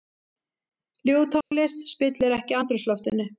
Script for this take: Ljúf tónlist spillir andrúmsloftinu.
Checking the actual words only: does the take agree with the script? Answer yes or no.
no